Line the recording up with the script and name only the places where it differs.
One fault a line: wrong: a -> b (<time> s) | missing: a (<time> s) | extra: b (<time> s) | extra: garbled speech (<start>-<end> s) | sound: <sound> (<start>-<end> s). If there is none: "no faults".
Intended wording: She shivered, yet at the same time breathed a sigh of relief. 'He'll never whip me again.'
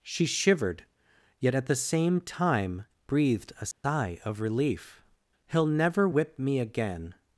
sound: dropout (3.7-3.8 s)